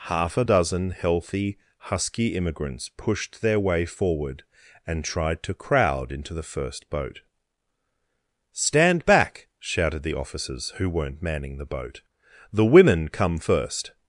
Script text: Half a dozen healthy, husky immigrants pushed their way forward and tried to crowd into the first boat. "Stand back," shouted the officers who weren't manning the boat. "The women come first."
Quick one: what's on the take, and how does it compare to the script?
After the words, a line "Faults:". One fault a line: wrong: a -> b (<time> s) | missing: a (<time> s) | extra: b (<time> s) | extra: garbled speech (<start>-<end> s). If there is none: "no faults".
Half a dozen healthy, husky immigrants pushed their way forward and tried to crowd into the first boat. "Stand back," shouted the officers who weren't manning the boat. "The women come first."
Faults:
no faults